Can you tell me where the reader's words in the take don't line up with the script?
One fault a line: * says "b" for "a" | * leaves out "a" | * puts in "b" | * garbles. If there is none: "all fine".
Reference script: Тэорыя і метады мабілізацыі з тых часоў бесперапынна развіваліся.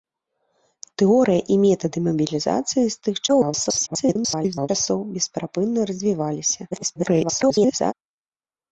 * garbles
* garbles